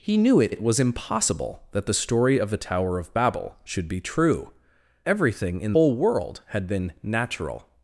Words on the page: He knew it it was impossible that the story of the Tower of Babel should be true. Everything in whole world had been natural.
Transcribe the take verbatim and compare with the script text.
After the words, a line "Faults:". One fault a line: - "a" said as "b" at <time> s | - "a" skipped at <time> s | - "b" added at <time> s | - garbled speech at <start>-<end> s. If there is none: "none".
He knew it it was impossible that the story of the Tower of Babel should be true. Everything in whole world had been natural.
Faults:
none